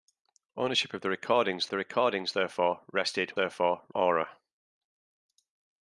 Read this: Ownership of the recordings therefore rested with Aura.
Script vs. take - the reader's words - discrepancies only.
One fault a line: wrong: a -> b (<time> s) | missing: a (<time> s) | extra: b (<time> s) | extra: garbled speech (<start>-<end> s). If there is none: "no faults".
extra: the recordings (1.7 s)
wrong: with -> therefore (3.3 s)